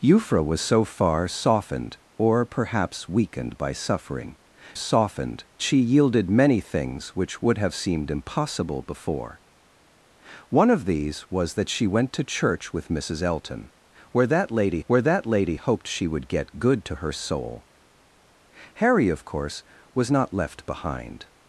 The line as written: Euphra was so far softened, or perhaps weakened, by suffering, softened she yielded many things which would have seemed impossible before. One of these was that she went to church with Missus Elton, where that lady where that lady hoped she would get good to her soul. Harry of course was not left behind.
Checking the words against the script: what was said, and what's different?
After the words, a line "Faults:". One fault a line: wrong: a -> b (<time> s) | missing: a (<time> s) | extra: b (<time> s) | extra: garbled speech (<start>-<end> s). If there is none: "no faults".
Euphra was so far softened, or perhaps weakened, by suffering, softened she yielded many things which would have seemed impossible before. One of these was that she went to church with Missus Elton, where that lady where that lady hoped she would get good to her soul. Harry of course was not left behind.
Faults:
no faults